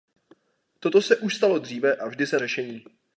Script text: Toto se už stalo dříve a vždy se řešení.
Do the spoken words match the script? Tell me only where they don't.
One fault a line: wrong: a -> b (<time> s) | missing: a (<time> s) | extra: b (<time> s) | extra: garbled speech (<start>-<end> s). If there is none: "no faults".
no faults